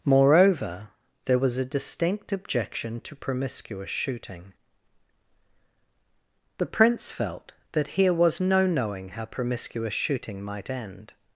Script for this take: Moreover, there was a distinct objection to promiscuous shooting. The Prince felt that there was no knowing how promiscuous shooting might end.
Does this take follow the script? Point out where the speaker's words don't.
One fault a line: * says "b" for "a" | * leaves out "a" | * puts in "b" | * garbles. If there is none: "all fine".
* says "here" for "there"